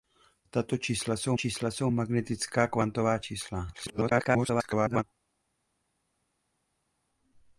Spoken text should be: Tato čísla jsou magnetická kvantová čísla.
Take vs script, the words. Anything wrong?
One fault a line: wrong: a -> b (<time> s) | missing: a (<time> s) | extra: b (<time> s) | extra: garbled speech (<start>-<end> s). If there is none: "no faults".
extra: čísla jsou (1.3 s)
extra: garbled speech (3.7-5.0 s)